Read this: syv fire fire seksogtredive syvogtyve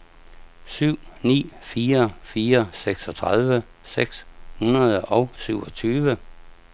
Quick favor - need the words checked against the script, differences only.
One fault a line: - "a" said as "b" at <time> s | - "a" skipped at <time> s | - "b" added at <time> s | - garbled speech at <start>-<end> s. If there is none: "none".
- "ni" added at 1.2 s
- "seks hundrede og" added at 3.8 s